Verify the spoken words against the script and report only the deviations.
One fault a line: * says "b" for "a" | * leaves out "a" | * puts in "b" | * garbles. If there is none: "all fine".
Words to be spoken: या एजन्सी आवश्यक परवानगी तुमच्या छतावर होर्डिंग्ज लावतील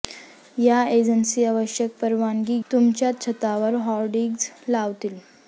all fine